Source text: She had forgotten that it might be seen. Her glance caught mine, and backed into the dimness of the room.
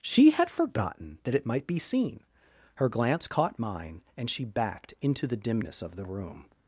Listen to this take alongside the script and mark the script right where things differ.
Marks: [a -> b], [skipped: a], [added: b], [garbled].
She had forgotten that it might be seen. Her glance caught mine, and [added: she] backed into the dimness of the room.